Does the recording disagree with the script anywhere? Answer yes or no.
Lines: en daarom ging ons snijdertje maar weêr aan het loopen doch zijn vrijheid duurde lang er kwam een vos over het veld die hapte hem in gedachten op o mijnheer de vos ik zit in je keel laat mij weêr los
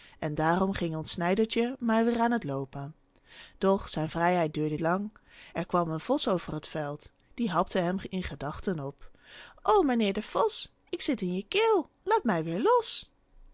no